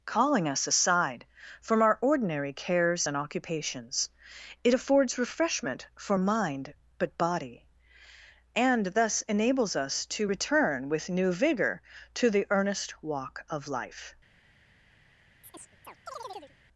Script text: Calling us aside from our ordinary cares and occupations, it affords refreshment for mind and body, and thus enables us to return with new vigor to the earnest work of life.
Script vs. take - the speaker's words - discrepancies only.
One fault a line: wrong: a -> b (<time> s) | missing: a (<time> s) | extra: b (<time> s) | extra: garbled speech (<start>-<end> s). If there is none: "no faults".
wrong: and -> but (7.0 s)
wrong: work -> walk (13.0 s)